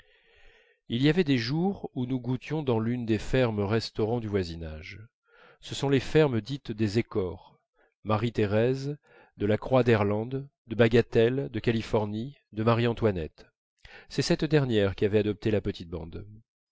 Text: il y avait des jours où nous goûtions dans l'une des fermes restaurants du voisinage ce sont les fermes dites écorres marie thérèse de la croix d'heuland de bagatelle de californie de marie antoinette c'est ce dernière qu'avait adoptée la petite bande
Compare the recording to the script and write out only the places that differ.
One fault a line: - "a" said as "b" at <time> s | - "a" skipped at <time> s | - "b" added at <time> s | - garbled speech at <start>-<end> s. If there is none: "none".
- "des" added at 6.7 s
- "ce" said as "cette" at 14.2 s